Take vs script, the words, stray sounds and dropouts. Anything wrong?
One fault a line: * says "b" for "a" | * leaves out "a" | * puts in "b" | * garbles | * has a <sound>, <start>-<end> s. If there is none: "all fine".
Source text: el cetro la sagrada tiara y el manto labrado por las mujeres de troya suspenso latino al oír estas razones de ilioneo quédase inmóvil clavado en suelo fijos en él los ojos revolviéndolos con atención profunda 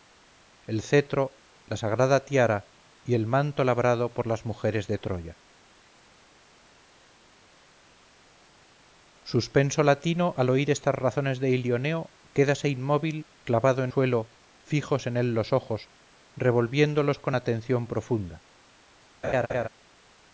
* has a laugh, 19.2-19.7 s